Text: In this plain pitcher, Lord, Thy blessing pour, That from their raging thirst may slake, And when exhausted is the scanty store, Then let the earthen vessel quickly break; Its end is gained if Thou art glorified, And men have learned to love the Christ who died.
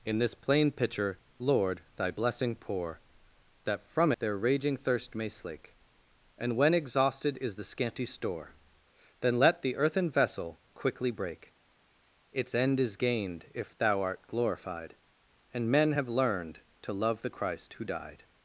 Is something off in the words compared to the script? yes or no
no